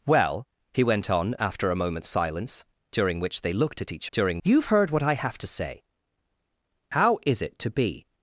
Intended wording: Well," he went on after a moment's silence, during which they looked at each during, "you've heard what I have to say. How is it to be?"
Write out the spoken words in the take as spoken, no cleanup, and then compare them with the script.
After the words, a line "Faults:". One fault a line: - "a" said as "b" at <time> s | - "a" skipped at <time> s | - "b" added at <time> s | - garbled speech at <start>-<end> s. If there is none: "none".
Well," he went on after a moment's silence, during which they looked at each during, "you've heard what I have to say. How is it to be?"
Faults:
none